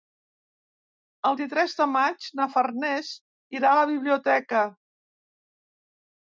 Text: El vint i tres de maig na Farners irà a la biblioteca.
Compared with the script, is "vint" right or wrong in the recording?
wrong